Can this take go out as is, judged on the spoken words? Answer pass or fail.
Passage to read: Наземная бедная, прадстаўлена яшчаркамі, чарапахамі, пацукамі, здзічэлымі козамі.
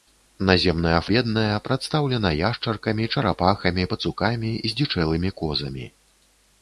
pass